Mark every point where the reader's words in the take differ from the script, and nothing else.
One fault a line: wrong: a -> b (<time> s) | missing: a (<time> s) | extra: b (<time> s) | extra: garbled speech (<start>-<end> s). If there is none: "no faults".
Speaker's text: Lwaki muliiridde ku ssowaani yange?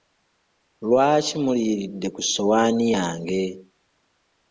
no faults